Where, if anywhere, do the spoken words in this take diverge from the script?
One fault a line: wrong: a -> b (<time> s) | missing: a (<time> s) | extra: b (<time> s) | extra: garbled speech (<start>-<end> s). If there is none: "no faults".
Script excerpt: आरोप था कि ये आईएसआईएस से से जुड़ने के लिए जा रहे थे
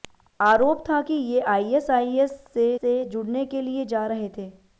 no faults